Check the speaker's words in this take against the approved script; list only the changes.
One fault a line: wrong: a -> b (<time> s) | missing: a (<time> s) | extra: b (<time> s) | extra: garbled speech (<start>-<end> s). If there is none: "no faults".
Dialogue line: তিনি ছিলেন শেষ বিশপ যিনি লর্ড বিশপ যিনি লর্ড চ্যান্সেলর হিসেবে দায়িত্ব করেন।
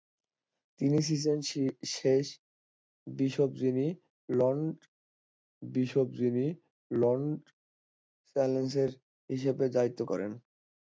no faults